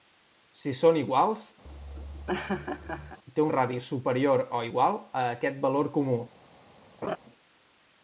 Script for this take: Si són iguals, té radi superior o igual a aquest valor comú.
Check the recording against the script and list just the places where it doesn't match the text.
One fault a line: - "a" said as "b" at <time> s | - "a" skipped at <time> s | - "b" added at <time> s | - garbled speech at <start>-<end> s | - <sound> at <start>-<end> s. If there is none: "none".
- laugh at 1.6-3.2 s
- laugh at 7.0-7.2 s